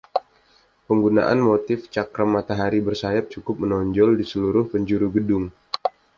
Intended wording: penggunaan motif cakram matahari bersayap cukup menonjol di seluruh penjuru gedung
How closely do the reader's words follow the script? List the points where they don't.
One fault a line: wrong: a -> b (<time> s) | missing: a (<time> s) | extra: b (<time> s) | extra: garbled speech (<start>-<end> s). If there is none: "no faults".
no faults